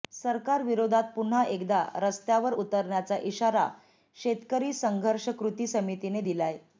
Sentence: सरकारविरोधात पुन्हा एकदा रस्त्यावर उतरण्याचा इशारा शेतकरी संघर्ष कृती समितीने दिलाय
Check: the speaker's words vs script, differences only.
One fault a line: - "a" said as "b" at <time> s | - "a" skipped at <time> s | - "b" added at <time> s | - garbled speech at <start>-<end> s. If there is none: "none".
none